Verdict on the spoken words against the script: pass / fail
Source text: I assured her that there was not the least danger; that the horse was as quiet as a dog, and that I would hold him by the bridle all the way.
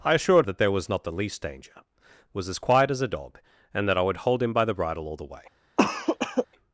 fail